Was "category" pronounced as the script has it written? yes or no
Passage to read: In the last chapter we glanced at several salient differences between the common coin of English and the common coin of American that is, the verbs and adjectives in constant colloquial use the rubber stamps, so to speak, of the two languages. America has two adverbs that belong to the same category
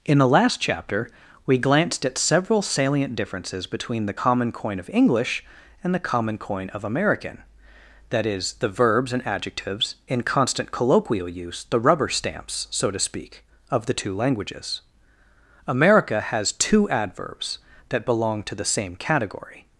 yes